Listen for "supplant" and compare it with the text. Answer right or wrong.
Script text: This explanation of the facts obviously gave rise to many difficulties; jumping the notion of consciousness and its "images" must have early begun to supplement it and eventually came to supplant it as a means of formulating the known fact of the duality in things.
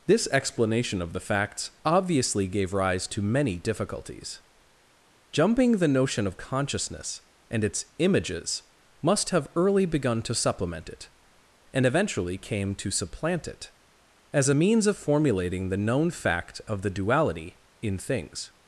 right